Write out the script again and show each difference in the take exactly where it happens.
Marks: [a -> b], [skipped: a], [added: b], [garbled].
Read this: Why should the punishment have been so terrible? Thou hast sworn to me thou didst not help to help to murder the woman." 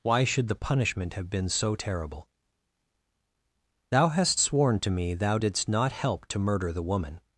Why should the punishment have been so terrible? Thou hast sworn to me thou didst not help to [skipped: help to] murder the woman."